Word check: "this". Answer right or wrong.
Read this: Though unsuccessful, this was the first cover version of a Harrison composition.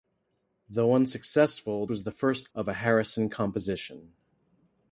wrong